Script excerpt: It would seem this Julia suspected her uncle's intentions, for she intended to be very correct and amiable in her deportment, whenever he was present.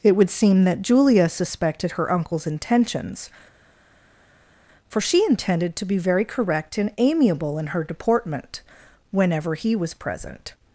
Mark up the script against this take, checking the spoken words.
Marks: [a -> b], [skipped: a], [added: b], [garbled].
It would seem [this -> that] Julia suspected her uncle's intentions, for she intended to be very correct and amiable in her deportment, whenever he was present.